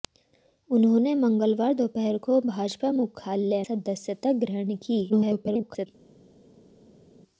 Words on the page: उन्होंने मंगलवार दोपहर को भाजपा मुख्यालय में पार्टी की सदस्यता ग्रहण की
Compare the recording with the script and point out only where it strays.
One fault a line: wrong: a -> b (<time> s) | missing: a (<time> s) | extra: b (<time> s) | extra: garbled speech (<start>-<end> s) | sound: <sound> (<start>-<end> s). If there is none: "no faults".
missing: में पार्टी की (3.6 s)
extra: garbled speech (5.1-5.9 s)